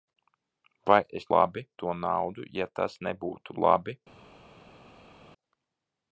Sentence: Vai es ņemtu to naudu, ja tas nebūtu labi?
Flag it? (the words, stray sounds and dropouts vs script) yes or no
yes